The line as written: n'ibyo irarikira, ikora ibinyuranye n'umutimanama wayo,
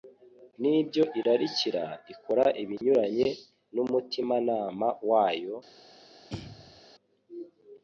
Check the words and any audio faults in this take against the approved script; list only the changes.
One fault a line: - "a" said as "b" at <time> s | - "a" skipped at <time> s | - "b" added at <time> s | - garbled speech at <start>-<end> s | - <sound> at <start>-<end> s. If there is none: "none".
- dropout at 2.8-2.8 s
- throat clearing at 6.3-6.8 s